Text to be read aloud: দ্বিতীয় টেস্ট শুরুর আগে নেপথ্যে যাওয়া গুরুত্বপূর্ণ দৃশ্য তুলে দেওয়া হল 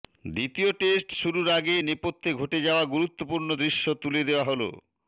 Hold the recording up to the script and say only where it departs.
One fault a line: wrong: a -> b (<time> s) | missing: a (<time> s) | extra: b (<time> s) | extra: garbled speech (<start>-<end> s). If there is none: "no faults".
extra: ঘটে (2.3 s)